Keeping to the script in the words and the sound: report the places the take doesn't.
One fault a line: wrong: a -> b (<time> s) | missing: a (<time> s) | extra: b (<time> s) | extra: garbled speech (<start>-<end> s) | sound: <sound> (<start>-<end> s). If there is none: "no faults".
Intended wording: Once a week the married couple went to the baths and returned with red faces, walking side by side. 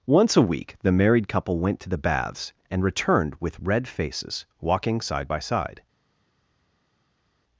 no faults